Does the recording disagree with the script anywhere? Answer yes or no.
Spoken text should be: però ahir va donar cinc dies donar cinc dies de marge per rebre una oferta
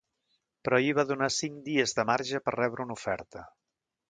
yes